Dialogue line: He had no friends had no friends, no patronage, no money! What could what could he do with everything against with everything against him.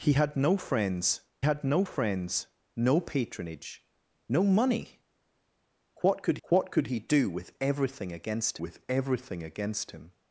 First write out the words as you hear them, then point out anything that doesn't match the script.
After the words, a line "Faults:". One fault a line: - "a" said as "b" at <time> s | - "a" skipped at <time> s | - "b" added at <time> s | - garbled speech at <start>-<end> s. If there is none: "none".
He had no friends had no friends, no patronage, no money! What could what could he do with everything against with everything against him.
Faults:
none